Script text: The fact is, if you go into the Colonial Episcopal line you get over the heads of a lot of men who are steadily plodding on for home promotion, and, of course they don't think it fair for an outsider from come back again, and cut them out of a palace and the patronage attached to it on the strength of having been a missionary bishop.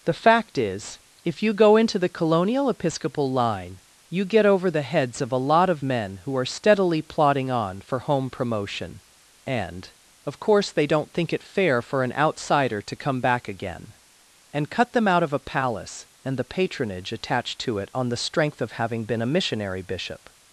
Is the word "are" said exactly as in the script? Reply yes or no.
yes